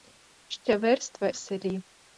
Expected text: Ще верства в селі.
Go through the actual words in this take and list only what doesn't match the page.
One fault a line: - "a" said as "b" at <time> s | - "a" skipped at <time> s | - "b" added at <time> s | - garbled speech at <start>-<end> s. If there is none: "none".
none